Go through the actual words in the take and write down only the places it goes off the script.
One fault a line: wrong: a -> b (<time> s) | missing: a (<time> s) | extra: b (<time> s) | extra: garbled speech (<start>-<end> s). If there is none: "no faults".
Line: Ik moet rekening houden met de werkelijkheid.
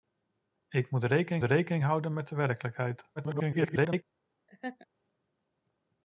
extra: rekening (1.4 s)
extra: garbled speech (3.2-4.0 s)